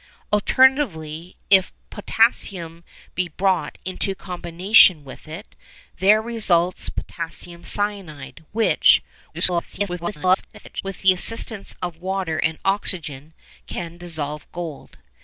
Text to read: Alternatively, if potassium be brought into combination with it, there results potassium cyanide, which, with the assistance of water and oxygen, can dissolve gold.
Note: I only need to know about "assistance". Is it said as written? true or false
true